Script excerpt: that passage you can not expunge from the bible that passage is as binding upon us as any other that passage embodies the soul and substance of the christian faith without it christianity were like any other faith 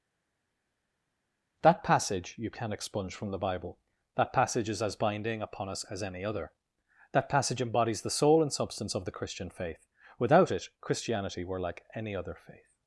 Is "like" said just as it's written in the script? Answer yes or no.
yes